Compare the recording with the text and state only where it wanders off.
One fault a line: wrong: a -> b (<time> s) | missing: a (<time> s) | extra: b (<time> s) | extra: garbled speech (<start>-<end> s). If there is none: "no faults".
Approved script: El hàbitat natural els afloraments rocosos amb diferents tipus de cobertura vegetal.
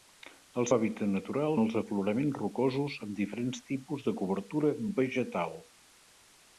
no faults